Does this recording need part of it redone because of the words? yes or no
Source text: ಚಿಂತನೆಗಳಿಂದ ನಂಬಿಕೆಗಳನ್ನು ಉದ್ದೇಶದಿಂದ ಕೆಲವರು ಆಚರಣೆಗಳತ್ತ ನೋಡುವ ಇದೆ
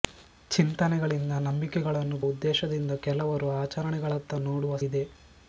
no